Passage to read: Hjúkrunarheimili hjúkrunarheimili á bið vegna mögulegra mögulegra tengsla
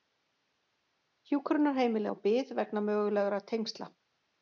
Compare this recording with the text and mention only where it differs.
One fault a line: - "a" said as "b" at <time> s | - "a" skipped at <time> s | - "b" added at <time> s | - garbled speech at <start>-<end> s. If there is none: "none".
- "hjúkrunarheimili" skipped at 2.1 s
- "mögulegra" skipped at 3.5 s